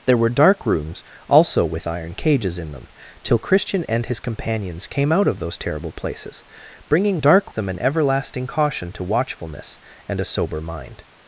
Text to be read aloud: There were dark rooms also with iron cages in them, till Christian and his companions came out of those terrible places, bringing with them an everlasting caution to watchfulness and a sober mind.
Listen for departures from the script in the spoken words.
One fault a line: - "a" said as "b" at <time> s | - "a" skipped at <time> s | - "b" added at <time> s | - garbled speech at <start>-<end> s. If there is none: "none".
- "with" said as "dark" at 7.2 s